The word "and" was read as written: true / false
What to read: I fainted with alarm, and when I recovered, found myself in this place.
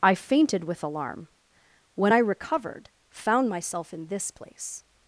false